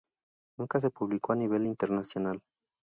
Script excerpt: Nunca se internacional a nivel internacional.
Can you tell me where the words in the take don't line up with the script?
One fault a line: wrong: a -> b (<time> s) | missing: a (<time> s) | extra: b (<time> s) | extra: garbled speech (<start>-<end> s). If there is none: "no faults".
wrong: internacional -> publicó (0.9 s)